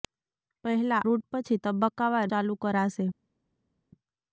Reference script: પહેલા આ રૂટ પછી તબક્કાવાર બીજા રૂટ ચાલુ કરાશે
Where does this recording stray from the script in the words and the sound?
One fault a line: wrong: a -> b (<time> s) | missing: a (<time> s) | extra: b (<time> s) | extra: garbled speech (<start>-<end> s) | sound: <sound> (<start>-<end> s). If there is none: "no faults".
missing: આ (1.0 s)
missing: બીજા રૂટ (2.3 s)